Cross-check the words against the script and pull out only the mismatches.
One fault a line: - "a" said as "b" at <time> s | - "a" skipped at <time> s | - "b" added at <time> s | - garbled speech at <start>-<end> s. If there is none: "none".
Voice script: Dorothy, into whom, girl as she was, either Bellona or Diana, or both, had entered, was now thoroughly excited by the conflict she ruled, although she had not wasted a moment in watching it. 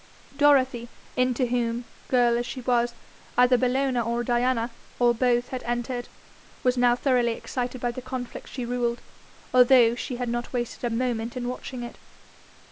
none